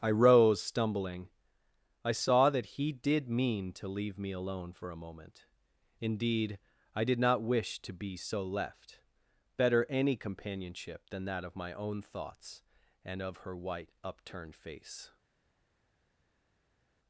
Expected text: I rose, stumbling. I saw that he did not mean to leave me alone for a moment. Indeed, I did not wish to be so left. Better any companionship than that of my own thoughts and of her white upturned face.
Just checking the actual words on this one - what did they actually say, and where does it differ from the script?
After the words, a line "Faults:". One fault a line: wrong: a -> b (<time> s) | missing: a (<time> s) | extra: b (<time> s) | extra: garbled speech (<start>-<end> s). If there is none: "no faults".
I rose, stumbling. I saw that he did mean to leave me alone for a moment. Indeed, I did not wish to be so left. Better any companionship than that of my own thoughts and of her white upturned face.
Faults:
missing: not (3.3 s)